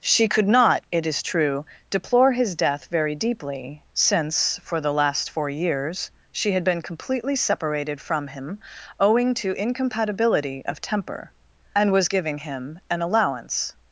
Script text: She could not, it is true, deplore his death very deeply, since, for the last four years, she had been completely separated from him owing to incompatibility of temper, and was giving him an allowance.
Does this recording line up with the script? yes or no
yes